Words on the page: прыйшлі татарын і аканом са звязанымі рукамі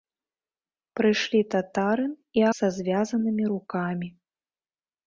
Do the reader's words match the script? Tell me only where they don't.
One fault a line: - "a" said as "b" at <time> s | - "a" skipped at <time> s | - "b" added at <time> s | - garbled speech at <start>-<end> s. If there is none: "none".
- "аканом" skipped at 2.5 s